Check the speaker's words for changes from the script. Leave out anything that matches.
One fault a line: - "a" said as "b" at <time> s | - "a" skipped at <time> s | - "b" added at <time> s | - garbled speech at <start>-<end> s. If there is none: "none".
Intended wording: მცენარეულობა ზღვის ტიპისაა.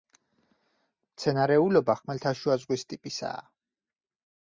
- "ხმელთაშუა" added at 2.0 s